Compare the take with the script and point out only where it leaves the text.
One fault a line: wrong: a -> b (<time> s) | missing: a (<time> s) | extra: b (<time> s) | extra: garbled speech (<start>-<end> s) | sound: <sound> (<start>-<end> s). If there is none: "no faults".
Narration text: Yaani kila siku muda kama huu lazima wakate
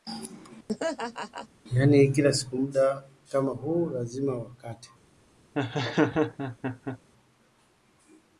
sound: laugh (0.7-1.5 s)
sound: laugh (5.5-7.0 s)